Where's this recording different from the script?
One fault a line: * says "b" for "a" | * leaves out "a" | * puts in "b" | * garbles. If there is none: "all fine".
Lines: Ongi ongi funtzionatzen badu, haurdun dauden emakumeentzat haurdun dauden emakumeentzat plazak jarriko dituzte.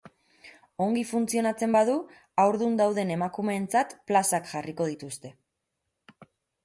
* leaves out "ongi"
* leaves out "haurdun dauden emakumeentzat"